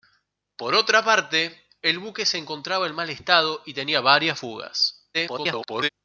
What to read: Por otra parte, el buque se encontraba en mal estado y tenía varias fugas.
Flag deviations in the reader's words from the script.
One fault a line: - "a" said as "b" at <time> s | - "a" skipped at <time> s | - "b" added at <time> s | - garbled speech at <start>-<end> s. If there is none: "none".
- garbled speech at 5.1-5.9 s